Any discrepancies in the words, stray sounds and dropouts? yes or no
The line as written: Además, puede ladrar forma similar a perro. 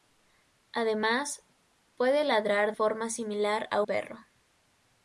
no